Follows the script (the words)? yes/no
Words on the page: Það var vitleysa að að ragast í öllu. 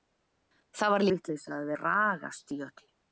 yes